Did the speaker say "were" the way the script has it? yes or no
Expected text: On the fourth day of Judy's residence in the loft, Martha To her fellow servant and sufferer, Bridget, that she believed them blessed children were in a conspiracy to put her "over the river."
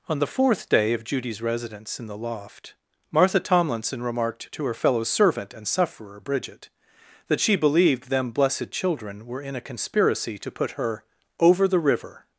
yes